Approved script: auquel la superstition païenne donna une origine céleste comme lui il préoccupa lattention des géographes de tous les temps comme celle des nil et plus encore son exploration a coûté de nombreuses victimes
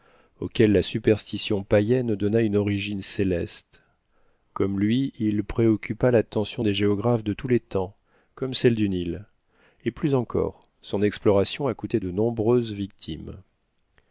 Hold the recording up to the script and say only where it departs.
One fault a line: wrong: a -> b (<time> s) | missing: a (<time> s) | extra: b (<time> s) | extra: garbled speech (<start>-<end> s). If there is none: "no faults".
wrong: des -> du (8.7 s)